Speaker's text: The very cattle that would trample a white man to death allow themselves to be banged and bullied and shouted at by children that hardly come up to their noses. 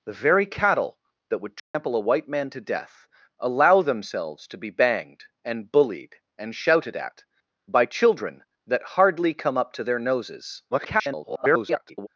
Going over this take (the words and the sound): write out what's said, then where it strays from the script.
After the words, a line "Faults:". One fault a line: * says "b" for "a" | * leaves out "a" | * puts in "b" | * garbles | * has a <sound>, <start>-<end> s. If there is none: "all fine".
The very cattle that would trample a white man to death allow themselves to be banged and bullied and shouted at by children that hardly come up to their noses. [garbled]
Faults:
* has a dropout, 1.6-1.7 s
* garbles